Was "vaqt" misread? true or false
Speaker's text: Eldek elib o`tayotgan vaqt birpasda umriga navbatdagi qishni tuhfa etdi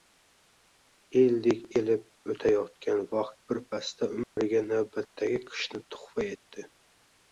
false